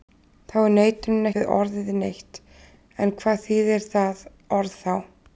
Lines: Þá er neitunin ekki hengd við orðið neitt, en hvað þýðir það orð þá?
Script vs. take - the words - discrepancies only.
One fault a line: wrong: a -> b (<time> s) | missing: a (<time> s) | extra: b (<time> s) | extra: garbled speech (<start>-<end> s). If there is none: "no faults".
missing: ekki hengd (1.3 s)